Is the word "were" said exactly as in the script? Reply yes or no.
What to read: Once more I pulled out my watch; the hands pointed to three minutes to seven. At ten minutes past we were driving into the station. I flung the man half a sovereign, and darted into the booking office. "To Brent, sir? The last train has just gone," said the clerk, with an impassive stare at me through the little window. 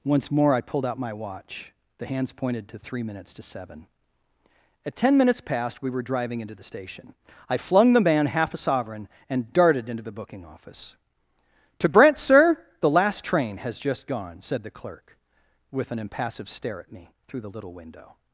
yes